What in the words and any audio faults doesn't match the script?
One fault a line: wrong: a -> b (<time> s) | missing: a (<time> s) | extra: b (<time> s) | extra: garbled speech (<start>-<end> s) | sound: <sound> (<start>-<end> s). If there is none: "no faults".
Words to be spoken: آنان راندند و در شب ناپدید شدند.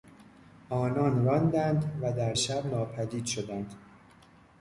no faults